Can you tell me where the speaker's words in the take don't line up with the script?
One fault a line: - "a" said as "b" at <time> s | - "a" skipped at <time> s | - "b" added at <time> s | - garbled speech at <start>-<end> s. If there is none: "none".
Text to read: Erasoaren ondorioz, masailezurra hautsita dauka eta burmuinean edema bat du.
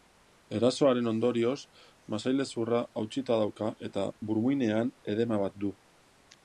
none